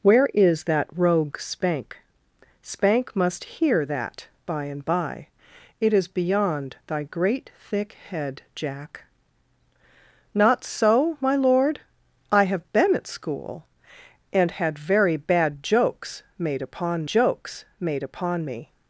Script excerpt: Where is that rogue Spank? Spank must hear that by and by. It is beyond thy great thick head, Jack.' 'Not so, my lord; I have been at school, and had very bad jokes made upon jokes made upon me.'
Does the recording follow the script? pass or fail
pass